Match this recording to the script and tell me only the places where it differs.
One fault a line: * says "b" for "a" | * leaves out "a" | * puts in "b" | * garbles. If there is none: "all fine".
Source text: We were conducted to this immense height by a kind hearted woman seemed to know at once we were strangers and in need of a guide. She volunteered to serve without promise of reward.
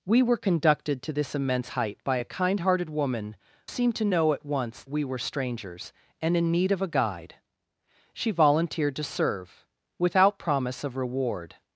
all fine